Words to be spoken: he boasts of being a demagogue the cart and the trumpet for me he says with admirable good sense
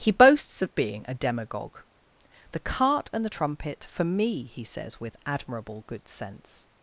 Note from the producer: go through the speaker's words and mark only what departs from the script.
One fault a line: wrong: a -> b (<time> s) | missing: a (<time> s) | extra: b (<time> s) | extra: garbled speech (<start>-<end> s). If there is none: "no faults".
no faults